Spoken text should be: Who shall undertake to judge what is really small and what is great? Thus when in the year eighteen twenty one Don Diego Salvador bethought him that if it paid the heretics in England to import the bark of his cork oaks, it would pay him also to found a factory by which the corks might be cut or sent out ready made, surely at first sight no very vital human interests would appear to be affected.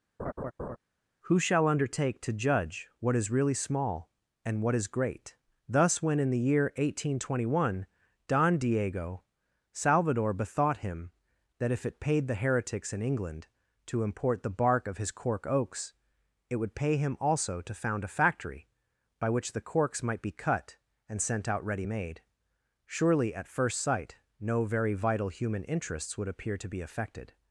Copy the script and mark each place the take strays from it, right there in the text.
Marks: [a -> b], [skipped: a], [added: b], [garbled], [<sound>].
[laugh] Who shall undertake to judge what is really small and what is great? Thus when in the year eighteen twenty one Don Diego Salvador bethought him that if it paid the heretics in England to import the bark of his cork oaks, it would pay him also to found a factory by which the corks might be cut [or -> and] sent out ready made, surely at first sight no very vital human interests would appear to be affected.